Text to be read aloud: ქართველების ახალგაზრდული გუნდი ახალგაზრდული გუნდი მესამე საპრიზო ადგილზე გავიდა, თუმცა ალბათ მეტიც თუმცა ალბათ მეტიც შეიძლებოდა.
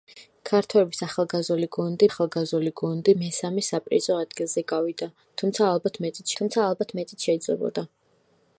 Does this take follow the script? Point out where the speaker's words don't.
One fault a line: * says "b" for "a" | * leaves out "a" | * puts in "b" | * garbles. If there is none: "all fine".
all fine